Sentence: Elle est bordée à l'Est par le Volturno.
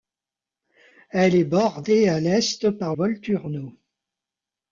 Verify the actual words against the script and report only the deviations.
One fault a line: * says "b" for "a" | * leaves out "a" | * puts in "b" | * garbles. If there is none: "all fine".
* leaves out "le"